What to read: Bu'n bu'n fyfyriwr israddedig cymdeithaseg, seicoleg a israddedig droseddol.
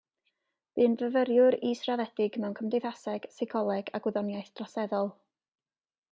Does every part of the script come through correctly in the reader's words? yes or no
no